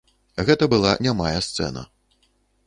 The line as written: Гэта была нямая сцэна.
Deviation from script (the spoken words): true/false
false